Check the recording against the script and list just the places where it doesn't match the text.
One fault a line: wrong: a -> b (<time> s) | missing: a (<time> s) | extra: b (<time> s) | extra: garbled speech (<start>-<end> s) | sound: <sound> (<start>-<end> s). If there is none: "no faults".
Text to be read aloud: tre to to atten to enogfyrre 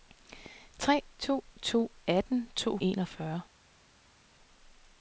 no faults